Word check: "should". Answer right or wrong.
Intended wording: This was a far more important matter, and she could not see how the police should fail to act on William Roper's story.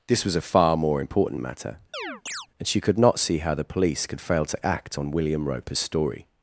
wrong